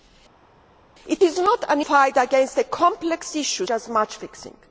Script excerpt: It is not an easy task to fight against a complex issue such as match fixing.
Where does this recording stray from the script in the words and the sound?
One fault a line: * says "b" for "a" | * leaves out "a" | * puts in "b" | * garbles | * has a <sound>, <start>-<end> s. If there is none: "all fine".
* leaves out "easy task to"
* leaves out "such"